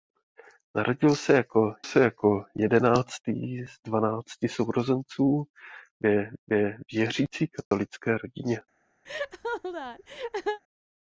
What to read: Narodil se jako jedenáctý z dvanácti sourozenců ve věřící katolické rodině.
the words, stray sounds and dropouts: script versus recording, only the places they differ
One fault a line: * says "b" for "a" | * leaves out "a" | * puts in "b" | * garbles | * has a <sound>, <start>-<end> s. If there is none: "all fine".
* puts in "se jako"
* puts in "ve"
* has a dropout, 7.7-7.7 s
* has a laugh, 9.0-10.6 s